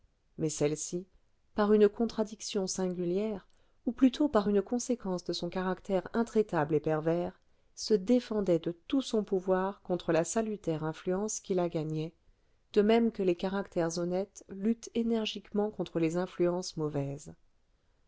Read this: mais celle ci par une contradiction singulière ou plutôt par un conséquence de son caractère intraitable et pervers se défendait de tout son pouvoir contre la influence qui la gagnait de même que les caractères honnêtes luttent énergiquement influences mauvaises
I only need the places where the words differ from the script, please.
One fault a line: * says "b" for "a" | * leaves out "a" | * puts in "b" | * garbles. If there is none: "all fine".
* says "une" for "un"
* puts in "salutaire"
* puts in "contre les"